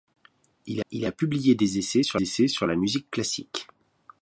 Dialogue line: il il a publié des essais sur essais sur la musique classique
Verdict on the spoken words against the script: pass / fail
pass